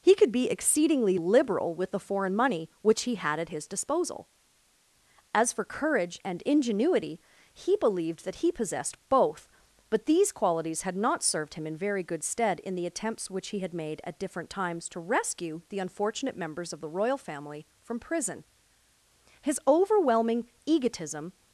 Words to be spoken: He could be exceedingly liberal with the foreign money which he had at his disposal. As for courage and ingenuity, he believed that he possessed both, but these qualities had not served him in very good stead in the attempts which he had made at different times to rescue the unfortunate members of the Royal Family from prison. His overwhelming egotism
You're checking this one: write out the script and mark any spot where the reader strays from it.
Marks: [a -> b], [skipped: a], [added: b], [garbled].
He could be exceedingly liberal with the foreign money which he had at his disposal. As for courage and ingenuity, he believed that he possessed both, but these qualities had not served him in very good stead in the attempts which he had made at different times to rescue the unfortunate members of the Royal Family from prison. His overwhelming egotism